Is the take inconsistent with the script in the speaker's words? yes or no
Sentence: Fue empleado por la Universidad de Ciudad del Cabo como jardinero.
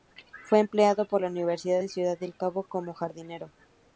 no